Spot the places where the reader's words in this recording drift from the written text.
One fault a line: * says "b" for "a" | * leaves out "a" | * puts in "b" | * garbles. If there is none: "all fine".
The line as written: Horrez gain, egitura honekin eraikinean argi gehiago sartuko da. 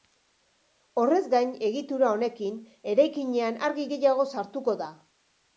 all fine